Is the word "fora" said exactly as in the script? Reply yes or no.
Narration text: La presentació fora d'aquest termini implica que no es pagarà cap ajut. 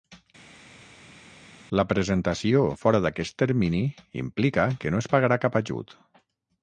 yes